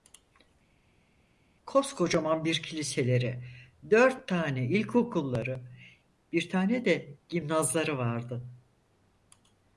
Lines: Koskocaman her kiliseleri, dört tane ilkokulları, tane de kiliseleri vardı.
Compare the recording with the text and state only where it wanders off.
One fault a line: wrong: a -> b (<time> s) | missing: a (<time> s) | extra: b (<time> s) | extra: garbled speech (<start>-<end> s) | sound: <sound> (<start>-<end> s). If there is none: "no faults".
wrong: her -> bir (2.4 s)
extra: bir (6.3 s)
wrong: kiliseleri -> gimnazları (7.3 s)